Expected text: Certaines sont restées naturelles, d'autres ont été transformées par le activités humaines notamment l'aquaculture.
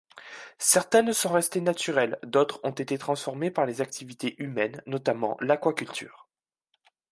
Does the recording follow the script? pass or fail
fail